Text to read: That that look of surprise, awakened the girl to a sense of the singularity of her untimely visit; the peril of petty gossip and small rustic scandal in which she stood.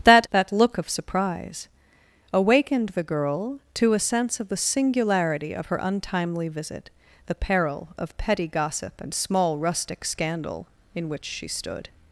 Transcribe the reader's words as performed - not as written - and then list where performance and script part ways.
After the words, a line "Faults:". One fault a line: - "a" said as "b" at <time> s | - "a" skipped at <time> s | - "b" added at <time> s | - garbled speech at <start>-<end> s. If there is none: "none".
That that look of surprise, awakened the girl to a sense of the singularity of her untimely visit; the peril of petty gossip and small rustic scandal in which she stood.
Faults:
none